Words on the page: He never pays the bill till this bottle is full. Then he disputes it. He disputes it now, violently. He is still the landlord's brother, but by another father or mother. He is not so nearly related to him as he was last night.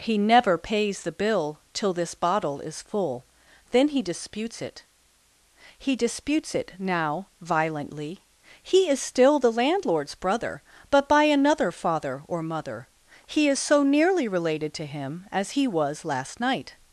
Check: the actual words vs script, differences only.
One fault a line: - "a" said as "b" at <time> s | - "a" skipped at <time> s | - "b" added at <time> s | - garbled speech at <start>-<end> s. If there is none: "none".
- "not" skipped at 13.6 s